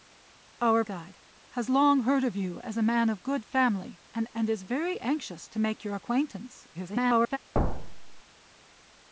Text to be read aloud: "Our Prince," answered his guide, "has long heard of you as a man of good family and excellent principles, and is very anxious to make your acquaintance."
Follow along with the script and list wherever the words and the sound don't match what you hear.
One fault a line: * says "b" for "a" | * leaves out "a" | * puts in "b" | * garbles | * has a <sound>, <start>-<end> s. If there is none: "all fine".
* leaves out "Prince answered his"
* leaves out "excellent principles"
* garbles
* has a thud, 7.5-8.2 s